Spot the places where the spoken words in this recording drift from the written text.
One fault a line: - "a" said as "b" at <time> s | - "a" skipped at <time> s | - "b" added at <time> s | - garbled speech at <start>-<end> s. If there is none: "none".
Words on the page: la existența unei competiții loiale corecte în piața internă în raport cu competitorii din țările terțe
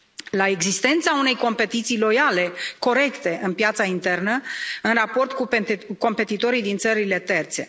none